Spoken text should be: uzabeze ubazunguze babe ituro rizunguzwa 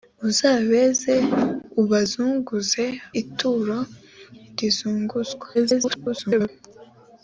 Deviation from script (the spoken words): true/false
true